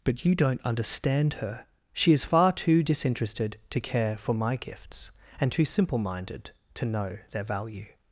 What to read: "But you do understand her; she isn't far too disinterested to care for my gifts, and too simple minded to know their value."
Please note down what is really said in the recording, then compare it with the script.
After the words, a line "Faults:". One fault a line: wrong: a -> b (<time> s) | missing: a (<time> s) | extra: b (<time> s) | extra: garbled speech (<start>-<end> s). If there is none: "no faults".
"But you don't understand her; she is far too disinterested to care for my gifts, and too simple minded to know their value."
Faults:
wrong: do -> don't (0.3 s)
wrong: isn't -> is (2.1 s)